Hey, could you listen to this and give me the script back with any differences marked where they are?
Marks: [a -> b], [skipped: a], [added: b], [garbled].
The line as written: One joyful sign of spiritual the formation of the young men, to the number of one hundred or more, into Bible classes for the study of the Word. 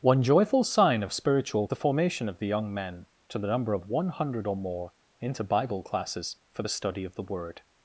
One joyful sign of spiritual the formation of the young men, to the number of one hundred or more, into Bible classes for the study of the Word.